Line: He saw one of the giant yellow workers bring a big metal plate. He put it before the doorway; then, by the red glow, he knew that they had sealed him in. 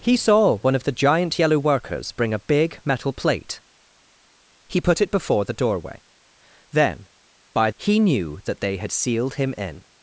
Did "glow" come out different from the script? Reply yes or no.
yes